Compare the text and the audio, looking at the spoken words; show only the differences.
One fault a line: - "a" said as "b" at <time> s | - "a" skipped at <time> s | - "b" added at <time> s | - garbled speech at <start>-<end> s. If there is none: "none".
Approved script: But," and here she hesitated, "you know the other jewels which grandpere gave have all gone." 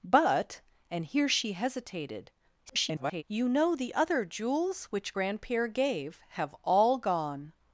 - garbled speech at 2.7-3.2 s